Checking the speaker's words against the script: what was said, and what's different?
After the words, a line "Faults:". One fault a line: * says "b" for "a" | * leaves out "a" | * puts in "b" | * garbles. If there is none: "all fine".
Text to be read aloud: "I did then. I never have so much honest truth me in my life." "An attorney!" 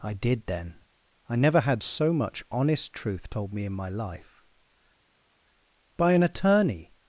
"I did then. I never had so much honest truth told me in my life." "By an attorney!"
Faults:
* says "had" for "have"
* puts in "told"
* puts in "By"